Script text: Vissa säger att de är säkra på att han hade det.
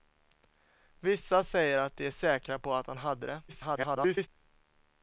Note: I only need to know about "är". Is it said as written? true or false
true